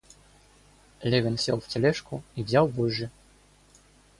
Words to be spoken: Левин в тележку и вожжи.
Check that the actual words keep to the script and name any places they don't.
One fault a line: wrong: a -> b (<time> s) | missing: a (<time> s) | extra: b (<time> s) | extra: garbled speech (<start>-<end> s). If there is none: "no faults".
extra: сел (1.4 s)
extra: взял (2.4 s)